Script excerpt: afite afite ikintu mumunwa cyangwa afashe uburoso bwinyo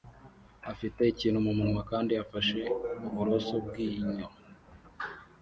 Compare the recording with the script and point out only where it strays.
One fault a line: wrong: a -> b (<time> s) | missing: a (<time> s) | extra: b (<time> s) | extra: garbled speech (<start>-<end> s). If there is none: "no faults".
missing: afite (1.0 s)
wrong: cyangwa -> kandi (1.9 s)